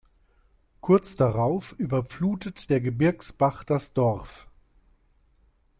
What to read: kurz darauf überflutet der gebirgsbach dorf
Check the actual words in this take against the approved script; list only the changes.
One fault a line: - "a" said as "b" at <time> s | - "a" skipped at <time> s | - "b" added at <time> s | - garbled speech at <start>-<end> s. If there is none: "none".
- "das" added at 3.6 s